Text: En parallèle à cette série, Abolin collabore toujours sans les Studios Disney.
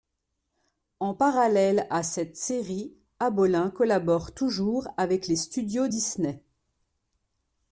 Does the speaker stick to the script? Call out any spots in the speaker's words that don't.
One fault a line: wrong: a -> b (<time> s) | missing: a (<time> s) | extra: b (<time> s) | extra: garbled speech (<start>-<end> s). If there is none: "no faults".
wrong: sans -> avec (5.0 s)